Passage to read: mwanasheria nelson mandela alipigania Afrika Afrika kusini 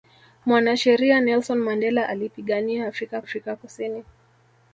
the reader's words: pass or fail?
pass